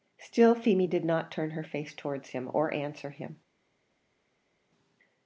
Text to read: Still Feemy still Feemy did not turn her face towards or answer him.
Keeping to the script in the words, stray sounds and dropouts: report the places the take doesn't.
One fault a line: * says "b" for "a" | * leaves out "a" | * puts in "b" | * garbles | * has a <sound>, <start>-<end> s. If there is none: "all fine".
* leaves out "still Feemy"
* puts in "him"